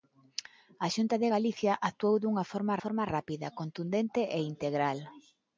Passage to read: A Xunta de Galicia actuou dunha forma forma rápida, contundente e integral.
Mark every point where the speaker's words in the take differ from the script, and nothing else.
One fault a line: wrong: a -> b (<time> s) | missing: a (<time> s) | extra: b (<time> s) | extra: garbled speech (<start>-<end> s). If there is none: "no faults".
no faults